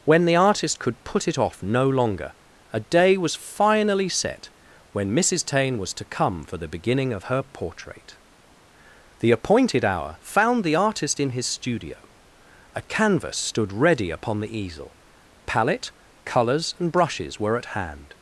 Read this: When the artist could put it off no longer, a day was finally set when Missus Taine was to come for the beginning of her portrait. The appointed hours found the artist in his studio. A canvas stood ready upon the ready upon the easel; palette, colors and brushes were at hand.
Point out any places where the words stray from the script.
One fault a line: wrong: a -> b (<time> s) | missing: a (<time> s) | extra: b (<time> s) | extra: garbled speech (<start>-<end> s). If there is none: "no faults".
wrong: hours -> hour (9.8 s)
missing: ready upon the (14.6 s)